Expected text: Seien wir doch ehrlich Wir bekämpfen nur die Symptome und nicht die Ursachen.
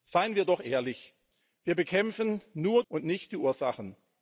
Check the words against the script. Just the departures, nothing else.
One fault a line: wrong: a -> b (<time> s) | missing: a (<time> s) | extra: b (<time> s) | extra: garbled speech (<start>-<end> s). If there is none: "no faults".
missing: die Symptome (2.8 s)